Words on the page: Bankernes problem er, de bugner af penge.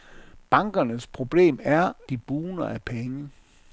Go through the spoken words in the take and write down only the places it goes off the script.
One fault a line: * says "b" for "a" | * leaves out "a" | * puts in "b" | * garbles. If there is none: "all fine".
all fine